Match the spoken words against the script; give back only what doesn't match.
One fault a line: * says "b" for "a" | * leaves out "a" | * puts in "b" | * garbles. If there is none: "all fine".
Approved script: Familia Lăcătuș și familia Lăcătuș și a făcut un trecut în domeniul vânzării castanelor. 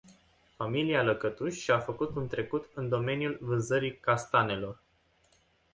* leaves out "familia Lăcătuș și"